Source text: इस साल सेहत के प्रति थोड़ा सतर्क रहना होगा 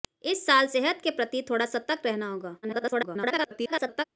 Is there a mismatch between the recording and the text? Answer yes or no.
yes